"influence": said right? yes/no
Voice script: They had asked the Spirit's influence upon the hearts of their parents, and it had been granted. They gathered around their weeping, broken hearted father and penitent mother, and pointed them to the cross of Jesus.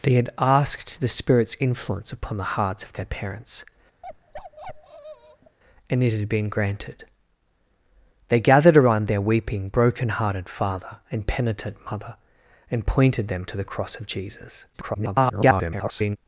yes